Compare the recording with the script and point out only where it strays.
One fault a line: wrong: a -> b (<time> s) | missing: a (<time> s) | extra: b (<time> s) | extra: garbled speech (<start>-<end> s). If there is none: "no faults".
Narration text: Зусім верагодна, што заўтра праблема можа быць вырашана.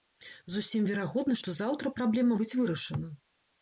missing: можа (2.3 s)